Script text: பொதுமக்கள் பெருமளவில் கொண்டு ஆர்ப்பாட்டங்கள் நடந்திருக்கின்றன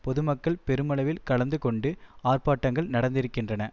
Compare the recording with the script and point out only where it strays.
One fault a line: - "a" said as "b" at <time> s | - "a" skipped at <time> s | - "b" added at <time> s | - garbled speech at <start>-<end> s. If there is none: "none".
- "கலந்து" added at 1.2 s